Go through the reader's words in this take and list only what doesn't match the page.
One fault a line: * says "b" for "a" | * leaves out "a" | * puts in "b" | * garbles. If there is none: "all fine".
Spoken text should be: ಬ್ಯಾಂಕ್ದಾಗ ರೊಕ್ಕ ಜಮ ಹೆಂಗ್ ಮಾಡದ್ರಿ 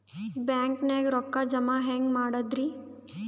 all fine